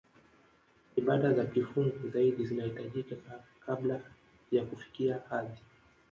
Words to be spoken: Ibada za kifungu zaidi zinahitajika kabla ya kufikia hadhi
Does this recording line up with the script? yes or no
yes